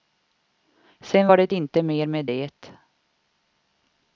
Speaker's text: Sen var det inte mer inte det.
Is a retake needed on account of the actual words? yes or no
yes